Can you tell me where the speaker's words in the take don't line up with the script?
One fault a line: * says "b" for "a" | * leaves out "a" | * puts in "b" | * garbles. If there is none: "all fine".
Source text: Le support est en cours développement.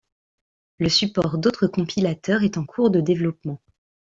* puts in "d'autres compilateurs"
* puts in "de"